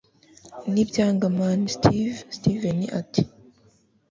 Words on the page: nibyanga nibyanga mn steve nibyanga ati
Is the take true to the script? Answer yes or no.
no